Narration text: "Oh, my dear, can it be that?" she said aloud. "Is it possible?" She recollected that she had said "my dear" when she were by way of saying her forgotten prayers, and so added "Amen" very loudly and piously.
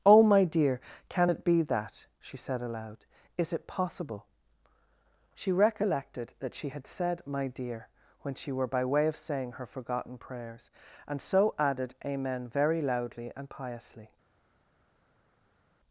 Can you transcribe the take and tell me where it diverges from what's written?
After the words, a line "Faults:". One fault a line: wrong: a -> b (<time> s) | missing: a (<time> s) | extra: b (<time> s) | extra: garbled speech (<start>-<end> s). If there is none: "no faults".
"Oh, my dear, can it be that?" she said aloud. "Is it possible?" She recollected that she had said "my dear" when she were by way of saying her forgotten prayers, and so added "Amen" very loudly and piously.
Faults:
no faults